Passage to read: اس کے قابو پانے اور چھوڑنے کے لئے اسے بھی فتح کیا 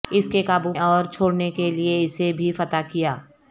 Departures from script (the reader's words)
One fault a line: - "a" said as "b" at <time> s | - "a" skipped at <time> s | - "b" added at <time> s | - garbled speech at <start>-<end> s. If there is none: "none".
- "پانے" skipped at 0.7 s